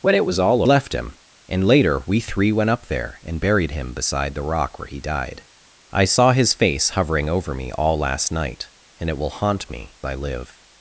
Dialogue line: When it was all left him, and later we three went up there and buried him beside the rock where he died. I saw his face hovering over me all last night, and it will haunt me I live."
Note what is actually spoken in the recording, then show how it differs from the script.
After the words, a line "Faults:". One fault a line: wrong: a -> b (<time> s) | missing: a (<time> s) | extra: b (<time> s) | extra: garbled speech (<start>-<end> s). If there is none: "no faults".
When it was all left him, and later we three went up there and buried him beside the rock where he died. I saw his face hovering over me all last night, and it will haunt me I live."
Faults:
no faults